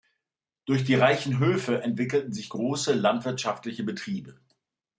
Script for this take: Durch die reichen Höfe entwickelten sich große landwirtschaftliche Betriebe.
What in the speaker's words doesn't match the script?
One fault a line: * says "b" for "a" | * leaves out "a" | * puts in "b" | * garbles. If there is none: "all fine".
all fine